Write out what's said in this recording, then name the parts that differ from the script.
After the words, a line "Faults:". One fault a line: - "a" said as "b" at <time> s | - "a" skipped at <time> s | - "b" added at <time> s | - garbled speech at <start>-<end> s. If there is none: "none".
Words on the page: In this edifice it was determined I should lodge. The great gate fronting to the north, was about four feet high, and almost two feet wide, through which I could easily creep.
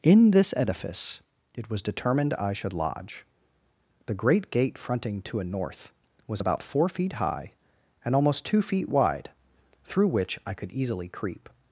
In this edifice it was determined I should lodge. The great gate fronting to a north, was about four feet high, and almost two feet wide, through which I could easily creep.
Faults:
- "the" said as "a" at 5.4 s